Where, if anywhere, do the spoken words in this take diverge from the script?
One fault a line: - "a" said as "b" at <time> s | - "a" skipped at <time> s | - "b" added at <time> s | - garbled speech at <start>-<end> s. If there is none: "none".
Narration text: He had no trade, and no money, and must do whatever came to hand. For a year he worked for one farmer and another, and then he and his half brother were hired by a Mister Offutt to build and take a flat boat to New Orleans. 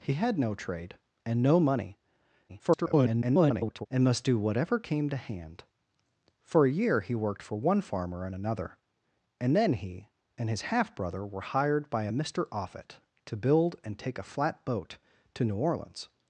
- garbled speech at 2.5-3.9 s